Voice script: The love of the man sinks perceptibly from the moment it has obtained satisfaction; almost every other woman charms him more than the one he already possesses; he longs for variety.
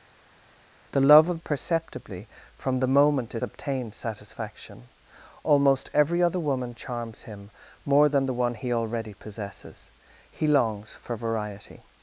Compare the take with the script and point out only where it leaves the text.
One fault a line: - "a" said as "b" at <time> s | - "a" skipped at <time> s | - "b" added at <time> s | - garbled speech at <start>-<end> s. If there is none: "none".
- "the man sinks" skipped at 1.4 s
- "has" skipped at 3.4 s